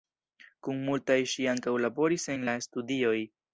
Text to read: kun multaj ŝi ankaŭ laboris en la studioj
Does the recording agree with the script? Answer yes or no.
yes